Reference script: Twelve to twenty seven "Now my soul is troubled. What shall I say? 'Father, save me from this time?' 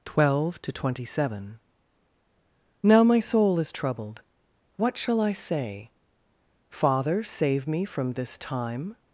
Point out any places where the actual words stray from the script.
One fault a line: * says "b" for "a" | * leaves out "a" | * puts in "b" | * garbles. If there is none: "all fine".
all fine